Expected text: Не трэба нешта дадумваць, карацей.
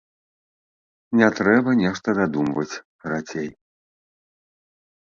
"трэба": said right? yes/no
yes